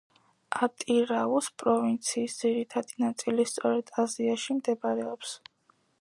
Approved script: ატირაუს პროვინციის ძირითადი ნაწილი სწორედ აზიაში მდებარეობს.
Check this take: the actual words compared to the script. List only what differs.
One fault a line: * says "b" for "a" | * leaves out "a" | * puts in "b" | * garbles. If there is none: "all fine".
all fine